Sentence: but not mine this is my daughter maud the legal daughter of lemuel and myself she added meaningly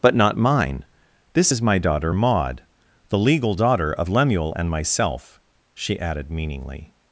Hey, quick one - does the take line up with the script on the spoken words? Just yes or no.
yes